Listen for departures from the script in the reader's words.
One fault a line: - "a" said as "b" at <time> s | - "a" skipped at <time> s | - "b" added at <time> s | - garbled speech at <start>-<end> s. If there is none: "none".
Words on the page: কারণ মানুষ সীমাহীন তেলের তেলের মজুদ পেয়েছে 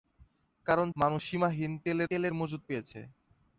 none